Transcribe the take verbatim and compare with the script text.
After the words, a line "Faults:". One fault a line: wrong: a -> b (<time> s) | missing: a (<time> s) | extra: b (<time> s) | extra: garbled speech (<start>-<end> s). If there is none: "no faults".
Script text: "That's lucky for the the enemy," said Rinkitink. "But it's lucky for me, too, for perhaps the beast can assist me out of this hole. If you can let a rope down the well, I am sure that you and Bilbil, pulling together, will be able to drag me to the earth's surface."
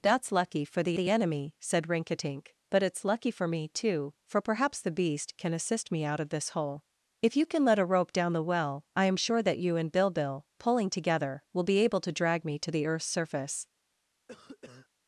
"That's lucky for the the enemy," said Rinkitink. "But it's lucky for me, too, for perhaps the beast can assist me out of this hole. If you can let a rope down the well, I am sure that you and Bilbil, pulling together, will be able to drag me to the earth's surface."
Faults:
no faults